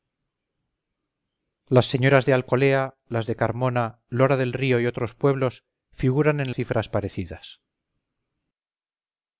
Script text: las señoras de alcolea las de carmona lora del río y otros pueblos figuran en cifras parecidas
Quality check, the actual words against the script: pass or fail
pass